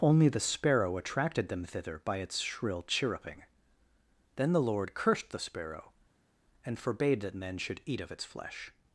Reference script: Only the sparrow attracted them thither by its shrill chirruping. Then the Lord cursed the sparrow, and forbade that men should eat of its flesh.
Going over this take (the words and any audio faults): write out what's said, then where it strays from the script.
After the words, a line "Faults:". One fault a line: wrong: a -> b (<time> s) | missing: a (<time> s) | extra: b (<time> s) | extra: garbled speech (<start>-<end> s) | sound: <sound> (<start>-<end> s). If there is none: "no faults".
Only the sparrow attracted them thither by its shrill chirruping. Then the Lord cursed the sparrow, and forbade that men should eat of its flesh.
Faults:
no faults